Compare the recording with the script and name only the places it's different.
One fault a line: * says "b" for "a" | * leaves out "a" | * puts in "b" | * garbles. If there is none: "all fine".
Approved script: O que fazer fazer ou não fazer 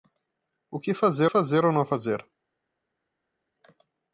all fine